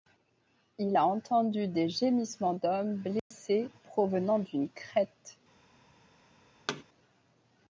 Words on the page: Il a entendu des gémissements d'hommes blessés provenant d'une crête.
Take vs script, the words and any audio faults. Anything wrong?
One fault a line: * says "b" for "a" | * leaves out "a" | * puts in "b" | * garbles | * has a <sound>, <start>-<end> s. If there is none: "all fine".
* has a dropout, 3.2-3.3 s
* has a thud, 6.7-6.8 s